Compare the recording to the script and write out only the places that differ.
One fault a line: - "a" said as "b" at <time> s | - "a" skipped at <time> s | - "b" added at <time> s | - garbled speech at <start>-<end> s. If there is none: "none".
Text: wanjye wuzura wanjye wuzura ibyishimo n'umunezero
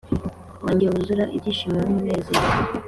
- "wanjye wuzura" skipped at 1.2 s